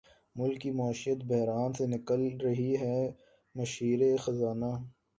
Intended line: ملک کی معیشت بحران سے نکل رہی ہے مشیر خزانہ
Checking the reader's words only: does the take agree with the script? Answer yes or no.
yes